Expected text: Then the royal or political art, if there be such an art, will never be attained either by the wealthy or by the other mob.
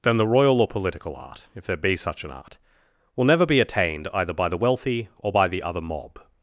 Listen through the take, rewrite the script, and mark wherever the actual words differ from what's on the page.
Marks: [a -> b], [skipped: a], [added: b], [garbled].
Then the royal or political art, if there be such an art, will never be attained either by the wealthy or by the other mob.